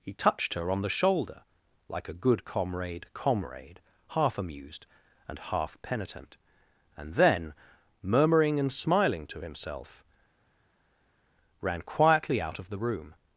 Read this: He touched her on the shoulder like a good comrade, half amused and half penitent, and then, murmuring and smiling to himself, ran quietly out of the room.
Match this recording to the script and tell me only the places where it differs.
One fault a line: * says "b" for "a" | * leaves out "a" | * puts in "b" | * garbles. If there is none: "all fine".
* puts in "comrade"